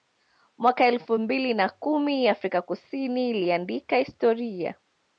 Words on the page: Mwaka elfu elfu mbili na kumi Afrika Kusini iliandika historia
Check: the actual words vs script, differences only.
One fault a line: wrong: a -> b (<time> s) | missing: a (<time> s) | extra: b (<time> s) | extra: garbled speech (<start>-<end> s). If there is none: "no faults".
missing: elfu (1.2 s)